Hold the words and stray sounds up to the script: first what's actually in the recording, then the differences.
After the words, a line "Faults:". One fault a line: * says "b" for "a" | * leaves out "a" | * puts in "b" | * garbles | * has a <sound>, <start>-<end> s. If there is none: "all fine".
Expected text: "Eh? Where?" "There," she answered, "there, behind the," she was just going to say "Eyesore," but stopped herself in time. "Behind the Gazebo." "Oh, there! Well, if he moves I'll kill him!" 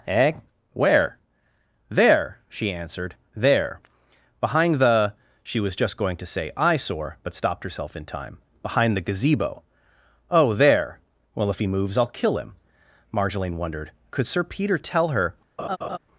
"Eh? Where?" "There," she answered, "there, behind the," she was just going to say "Eyesore," but stopped herself in time. "Behind the Gazebo." "Oh, there! Well, if he moves I'll kill him!" Marjolaine wondered. Could Sir Peter tell her
Faults:
* puts in "Marjolaine wondered Could Sir Peter tell her"
* has a laugh, 15.6-16.0 s